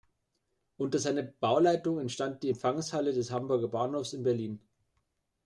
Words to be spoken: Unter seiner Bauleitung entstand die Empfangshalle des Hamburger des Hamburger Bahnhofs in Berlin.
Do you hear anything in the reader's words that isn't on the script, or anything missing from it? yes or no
yes